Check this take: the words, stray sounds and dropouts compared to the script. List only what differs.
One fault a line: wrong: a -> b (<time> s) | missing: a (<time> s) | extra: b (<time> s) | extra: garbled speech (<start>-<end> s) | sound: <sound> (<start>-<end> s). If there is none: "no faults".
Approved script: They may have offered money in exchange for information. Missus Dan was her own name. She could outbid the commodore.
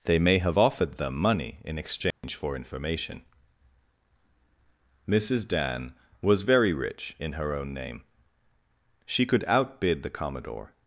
extra: them (1.0 s)
sound: dropout (2.1-2.2 s)
extra: very rich in (6.4 s)